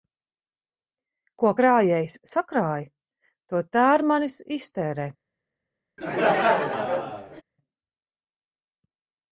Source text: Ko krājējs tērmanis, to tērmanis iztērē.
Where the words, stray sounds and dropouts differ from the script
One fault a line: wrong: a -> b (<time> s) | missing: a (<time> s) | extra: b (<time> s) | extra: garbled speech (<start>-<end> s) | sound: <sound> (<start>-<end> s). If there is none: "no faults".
wrong: tērmanis -> sakrāj (2.3 s)
sound: laugh (6.0-7.4 s)